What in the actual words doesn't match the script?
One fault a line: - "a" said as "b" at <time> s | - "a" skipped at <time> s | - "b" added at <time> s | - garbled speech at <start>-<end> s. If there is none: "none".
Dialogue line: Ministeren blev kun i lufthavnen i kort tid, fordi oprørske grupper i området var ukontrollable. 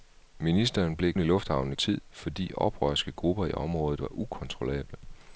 - "kun" skipped at 1.1 s
- "kort" skipped at 1.8 s